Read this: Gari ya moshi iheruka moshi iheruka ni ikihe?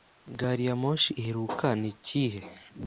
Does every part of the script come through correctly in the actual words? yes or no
no